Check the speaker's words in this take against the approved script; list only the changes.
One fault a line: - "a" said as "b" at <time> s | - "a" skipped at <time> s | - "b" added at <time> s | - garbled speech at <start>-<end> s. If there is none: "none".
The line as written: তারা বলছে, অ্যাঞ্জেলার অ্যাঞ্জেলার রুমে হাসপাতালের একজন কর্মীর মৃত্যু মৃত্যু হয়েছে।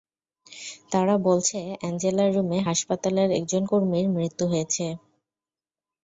- "অ্যাঞ্জেলার" skipped at 2.3 s
- "মৃত্যু" skipped at 4.4 s